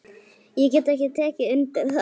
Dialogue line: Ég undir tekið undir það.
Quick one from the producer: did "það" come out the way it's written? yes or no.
yes